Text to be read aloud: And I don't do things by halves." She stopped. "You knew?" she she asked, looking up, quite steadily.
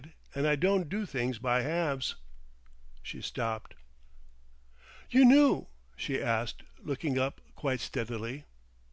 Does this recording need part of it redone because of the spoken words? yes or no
yes